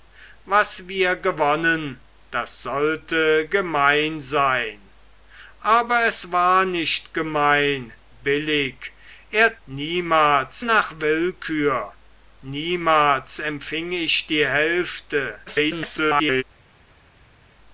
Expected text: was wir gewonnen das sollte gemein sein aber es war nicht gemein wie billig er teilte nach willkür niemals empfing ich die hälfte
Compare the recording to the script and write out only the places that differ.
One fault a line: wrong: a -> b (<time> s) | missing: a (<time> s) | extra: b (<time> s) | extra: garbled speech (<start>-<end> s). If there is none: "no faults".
missing: wie (7.9 s)
wrong: teilte -> niemals (9.7 s)
extra: garbled speech (15.5-16.4 s)